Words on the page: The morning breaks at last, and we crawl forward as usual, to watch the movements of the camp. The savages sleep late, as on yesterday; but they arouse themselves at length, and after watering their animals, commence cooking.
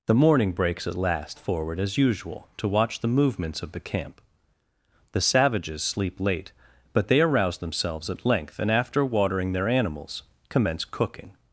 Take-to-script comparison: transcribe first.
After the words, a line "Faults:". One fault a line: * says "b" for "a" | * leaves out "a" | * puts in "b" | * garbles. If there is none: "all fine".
The morning breaks at last, forward as usual, to watch the movements of the camp. The savages sleep late; but they arouse themselves at length, and after watering their animals, commence cooking.
Faults:
* leaves out "and we crawl"
* leaves out "as on yesterday"